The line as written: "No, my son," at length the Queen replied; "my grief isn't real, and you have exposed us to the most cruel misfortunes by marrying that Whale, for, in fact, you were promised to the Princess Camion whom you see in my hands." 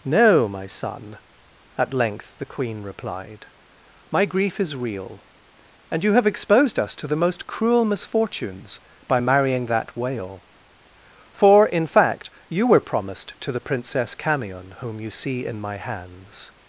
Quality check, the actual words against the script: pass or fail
fail